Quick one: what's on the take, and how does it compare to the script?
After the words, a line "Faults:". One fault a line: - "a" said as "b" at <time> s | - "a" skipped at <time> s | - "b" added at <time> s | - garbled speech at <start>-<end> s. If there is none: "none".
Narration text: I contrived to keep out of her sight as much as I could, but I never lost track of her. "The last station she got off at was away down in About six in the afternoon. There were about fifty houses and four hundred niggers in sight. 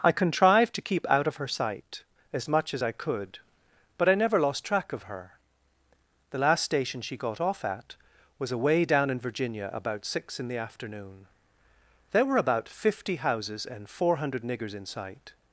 I contrived to keep out of her sight as much as I could, but I never lost track of her. "The last station she got off at was away down in Virginia, about six in the afternoon. There were about fifty houses and four hundred niggers in sight.
Faults:
- "Virginia" added at 9.2 s